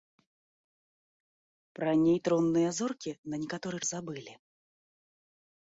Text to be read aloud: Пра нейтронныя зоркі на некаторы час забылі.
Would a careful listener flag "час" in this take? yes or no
yes